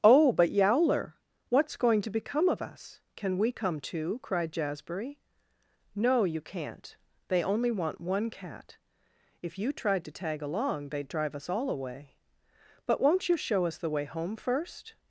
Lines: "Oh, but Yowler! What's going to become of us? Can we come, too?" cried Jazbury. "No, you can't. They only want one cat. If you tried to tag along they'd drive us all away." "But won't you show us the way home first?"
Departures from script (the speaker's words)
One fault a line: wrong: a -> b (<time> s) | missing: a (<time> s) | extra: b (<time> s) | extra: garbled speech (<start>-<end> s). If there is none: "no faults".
no faults